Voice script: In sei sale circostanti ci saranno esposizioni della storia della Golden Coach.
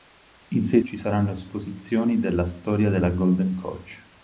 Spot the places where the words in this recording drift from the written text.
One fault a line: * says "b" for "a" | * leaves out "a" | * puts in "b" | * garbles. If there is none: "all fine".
* leaves out "sale circostanti"